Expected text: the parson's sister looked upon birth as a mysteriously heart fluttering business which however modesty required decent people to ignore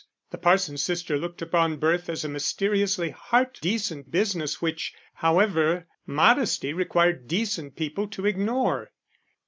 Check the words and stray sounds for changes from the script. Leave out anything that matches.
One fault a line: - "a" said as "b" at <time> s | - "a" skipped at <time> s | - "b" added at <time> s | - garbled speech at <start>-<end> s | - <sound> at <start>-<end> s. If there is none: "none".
- "fluttering" said as "decent" at 3.6 s